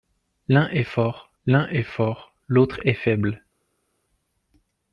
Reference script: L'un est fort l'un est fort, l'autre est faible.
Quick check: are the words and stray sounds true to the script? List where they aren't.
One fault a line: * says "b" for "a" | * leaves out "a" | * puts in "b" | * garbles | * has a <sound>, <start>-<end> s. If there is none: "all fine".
all fine